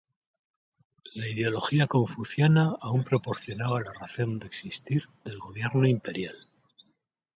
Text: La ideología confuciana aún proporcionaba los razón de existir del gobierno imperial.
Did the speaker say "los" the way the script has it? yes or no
no